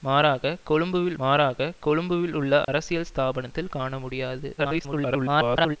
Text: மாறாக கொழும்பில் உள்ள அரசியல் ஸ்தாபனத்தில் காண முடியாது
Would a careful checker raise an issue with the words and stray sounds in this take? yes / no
yes